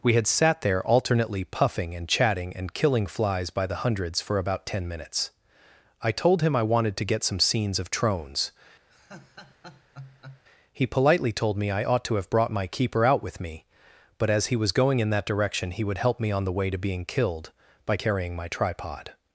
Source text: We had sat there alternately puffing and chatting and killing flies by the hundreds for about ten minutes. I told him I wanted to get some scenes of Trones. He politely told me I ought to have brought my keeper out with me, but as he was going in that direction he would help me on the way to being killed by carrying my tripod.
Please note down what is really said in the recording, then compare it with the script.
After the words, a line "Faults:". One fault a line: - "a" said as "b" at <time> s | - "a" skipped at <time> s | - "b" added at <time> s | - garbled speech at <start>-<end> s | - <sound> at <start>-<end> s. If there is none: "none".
We had sat there alternately puffing and chatting and killing flies by the hundreds for about ten minutes. I told him I wanted to get some scenes of Trones. He politely told me I ought to have brought my keeper out with me, but as he was going in that direction he would help me on the way to being killed by carrying my tripod.
Faults:
- laugh at 8.9-10.4 s